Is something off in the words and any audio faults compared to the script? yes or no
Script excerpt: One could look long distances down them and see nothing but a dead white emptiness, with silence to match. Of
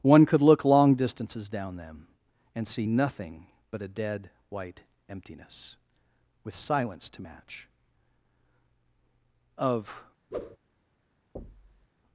yes